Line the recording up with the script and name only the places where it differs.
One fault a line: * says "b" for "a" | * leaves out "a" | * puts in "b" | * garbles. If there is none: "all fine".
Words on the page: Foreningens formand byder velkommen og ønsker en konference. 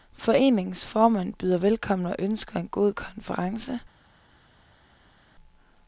* puts in "god"